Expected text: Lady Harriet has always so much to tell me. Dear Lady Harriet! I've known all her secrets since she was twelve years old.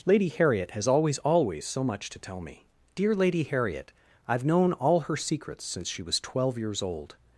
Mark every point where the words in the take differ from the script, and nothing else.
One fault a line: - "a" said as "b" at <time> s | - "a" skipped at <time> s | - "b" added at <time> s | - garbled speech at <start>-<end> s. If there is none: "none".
- "always" added at 1.2 s